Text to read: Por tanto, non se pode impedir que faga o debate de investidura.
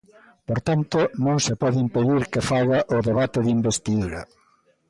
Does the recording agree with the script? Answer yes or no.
yes